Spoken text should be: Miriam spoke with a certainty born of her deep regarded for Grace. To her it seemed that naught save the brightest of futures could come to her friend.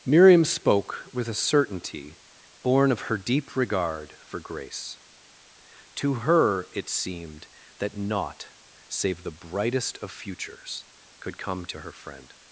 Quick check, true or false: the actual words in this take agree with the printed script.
false